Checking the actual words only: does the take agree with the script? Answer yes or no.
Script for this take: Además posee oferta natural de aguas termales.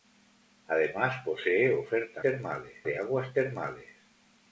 no